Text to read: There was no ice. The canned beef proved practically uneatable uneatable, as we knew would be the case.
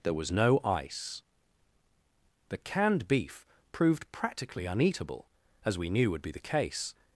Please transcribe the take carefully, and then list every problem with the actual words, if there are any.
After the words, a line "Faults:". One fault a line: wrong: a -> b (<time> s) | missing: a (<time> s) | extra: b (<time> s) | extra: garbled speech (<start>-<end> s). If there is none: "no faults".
There was no ice. The canned beef proved practically uneatable, as we knew would be the case.
Faults:
missing: uneatable (5.2 s)